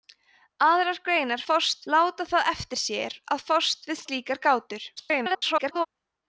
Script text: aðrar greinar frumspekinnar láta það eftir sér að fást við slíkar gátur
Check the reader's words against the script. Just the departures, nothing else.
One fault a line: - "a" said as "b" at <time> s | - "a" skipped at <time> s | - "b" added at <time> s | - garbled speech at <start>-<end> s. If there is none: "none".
- "frumspekinnar" said as "fást" at 1.5 s
- garbled speech at 5.0-5.9 s